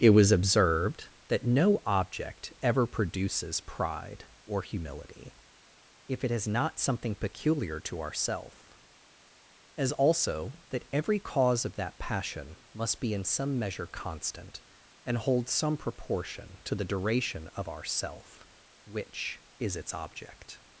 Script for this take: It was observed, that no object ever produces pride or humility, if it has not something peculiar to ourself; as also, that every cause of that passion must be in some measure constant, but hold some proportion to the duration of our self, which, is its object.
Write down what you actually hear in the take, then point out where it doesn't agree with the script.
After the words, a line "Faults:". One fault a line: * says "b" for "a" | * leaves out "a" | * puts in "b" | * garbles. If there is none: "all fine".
It was observed, that no object ever produces pride or humility, if it has not something peculiar to ourself; as also, that every cause of that passion must be in some measure constant, and hold some proportion to the duration of our self, which, is its object.
Faults:
* says "and" for "but"